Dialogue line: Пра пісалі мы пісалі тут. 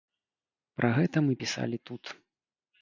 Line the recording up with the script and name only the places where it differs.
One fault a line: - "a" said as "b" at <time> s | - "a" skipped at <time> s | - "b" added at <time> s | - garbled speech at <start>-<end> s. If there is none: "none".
- "пісалі" said as "гэта" at 1.0 s